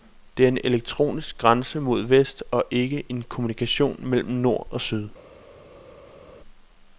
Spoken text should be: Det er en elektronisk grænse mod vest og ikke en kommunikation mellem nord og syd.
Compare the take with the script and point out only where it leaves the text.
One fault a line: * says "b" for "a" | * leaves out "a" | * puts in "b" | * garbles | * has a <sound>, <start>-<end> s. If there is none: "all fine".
all fine